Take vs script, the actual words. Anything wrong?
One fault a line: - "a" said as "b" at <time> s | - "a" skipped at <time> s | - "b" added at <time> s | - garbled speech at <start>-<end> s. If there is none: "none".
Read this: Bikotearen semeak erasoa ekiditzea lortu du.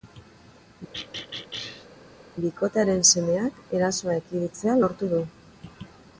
none